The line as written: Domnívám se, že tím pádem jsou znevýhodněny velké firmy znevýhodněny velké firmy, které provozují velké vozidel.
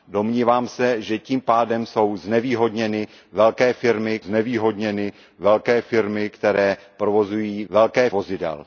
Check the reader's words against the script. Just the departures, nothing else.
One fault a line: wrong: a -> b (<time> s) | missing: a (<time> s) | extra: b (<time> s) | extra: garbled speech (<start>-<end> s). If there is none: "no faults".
no faults